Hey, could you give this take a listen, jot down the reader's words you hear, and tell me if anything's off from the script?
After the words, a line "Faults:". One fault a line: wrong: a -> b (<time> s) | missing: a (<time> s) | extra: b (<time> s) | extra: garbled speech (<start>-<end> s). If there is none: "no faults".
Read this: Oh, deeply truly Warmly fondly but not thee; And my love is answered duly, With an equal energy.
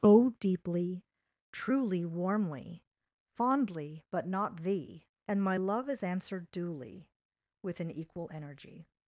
Oh, deeply truly Warmly fondly but not thee; And my love is answered duly, With an equal energy.
Faults:
no faults